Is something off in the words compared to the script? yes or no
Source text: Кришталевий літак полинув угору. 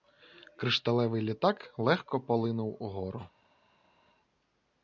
yes